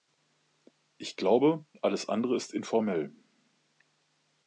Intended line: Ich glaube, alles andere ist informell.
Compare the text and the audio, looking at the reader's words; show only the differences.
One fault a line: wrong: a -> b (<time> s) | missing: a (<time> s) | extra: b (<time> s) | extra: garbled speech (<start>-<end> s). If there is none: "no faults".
no faults